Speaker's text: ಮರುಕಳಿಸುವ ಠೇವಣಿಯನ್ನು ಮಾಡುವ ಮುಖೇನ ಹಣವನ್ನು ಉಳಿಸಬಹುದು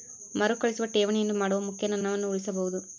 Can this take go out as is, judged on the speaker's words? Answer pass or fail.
pass